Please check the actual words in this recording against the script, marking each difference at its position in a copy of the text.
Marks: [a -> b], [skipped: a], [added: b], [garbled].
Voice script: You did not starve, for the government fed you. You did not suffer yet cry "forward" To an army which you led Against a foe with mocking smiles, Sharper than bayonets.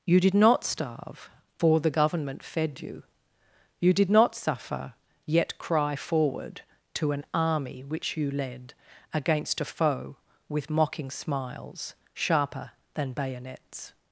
You did not starve, for the government fed you. You did not suffer yet cry "forward" To an army which you led Against a foe with mocking smiles, Sharper than bayonets.